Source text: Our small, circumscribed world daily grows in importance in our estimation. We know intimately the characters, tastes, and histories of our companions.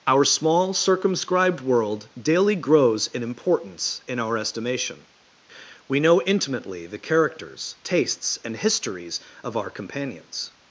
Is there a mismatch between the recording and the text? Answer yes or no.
no